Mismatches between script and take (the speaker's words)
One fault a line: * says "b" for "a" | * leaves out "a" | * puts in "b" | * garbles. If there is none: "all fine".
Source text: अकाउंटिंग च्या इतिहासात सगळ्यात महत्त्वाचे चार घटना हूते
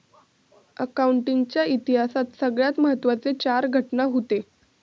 all fine